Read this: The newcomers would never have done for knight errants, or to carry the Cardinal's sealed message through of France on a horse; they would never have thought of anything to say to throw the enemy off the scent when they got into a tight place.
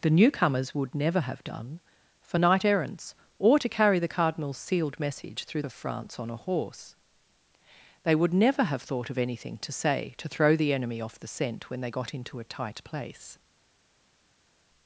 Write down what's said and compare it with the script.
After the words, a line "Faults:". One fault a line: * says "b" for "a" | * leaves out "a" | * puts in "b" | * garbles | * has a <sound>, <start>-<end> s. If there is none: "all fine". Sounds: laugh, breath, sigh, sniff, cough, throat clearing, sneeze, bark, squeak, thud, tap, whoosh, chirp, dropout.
The newcomers would never have done for knight errants, or to carry the Cardinal's sealed message through of France on a horse; they would never have thought of anything to say to throw the enemy off the scent when they got into a tight place.
Faults:
all fine